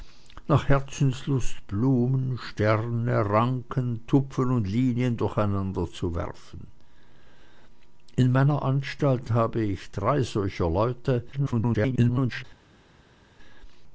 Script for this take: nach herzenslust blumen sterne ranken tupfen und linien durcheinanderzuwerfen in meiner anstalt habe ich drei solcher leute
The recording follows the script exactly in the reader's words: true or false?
false